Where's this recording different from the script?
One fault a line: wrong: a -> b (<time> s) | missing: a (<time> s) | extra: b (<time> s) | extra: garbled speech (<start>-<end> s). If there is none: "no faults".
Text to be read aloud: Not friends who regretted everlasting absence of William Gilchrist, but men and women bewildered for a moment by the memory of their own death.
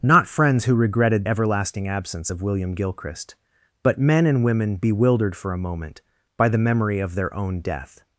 no faults